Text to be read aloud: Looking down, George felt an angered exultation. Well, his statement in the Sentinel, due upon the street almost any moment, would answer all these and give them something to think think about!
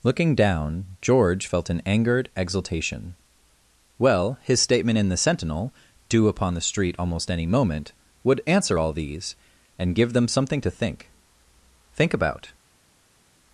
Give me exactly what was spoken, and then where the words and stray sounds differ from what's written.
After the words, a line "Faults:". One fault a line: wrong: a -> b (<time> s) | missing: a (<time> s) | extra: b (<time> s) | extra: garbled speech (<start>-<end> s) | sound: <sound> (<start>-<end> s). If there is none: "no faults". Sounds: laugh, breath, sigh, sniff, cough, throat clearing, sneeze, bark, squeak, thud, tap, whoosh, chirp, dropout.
Looking down, George felt an angered exultation. Well, his statement in the Sentinel, due upon the street almost any moment, would answer all these and give them something to think think about!
Faults:
no faults